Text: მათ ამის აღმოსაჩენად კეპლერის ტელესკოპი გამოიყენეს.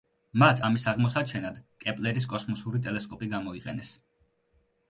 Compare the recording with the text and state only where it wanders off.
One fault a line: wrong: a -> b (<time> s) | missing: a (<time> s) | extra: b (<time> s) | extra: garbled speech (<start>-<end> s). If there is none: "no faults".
extra: კოსმოსური (2.3 s)